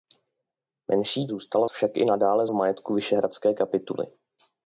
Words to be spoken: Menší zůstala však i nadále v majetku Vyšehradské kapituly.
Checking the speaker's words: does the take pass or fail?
pass